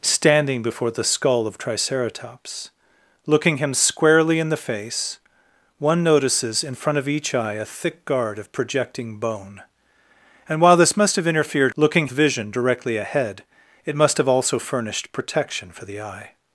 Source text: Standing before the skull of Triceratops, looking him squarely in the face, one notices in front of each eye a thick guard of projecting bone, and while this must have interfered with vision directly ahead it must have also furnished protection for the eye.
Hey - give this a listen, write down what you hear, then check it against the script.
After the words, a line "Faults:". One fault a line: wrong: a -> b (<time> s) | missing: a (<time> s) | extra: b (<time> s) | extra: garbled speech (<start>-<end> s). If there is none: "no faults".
Standing before the skull of Triceratops, looking him squarely in the face, one notices in front of each eye a thick guard of projecting bone, and while this must have interfered looking vision directly ahead it must have also furnished protection for the eye.
Faults:
wrong: with -> looking (11.8 s)